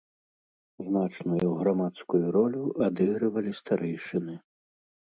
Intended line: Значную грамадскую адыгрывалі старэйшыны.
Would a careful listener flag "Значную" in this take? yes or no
no